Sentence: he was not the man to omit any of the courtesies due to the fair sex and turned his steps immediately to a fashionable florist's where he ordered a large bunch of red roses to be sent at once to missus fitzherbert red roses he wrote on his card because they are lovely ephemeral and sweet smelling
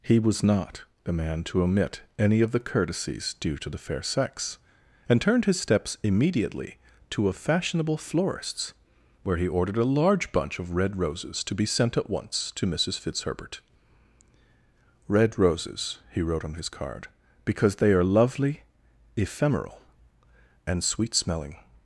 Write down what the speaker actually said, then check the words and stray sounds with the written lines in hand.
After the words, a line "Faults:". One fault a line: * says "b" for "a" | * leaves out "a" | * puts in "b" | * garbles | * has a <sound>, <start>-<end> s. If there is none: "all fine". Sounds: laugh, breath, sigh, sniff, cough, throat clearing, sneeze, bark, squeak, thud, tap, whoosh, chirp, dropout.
he was not the man to omit any of the courtesies due to the fair sex and turned his steps immediately to a fashionable florist's where he ordered a large bunch of red roses to be sent at once to missus fitzherbert red roses he wrote on his card because they are lovely ephemeral and sweet smelling
Faults:
all fine